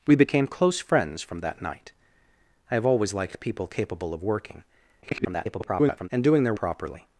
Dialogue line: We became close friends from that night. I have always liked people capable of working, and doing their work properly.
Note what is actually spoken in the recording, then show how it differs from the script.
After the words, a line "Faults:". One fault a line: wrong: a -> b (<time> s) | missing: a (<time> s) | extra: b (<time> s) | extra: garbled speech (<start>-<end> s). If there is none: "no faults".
We became close friends from that night. I have always liked people capable of working, [garbled] and doing their properly.
Faults:
extra: garbled speech (5.0-6.1 s)
missing: work (6.5 s)